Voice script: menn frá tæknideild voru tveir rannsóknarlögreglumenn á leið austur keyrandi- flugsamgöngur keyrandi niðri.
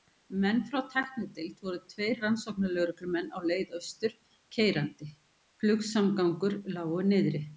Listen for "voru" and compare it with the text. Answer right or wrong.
right